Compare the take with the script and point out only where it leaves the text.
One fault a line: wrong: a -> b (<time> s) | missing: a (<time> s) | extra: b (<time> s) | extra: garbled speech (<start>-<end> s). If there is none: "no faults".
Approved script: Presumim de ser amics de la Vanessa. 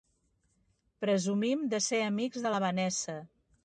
no faults